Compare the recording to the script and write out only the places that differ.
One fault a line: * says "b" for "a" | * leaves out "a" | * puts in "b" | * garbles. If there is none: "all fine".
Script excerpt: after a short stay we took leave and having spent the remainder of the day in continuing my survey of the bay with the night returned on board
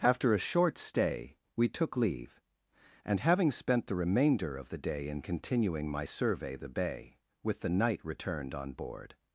* leaves out "of"